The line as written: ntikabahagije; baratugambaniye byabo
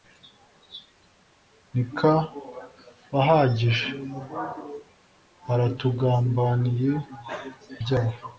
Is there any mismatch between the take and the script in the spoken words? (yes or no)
no